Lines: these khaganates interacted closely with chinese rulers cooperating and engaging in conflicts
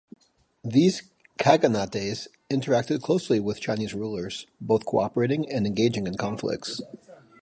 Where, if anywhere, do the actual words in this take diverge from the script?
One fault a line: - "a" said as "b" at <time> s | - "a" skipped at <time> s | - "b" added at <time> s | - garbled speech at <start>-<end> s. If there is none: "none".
- "both" added at 4.6 s